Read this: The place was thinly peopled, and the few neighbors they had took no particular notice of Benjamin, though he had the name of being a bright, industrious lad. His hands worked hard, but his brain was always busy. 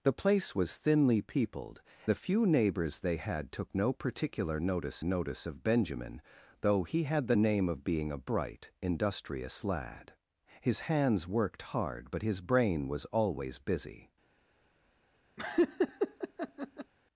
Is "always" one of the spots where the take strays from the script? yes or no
no